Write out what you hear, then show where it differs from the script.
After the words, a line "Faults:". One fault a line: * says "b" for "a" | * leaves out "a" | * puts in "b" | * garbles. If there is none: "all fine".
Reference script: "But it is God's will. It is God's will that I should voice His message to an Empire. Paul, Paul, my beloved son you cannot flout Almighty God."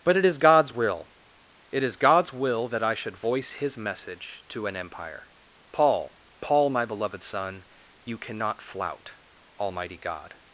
"But it is God's will. It is God's will that I should voice His message to an Empire. Paul, Paul, my beloved son you cannot flout Almighty God."
Faults:
all fine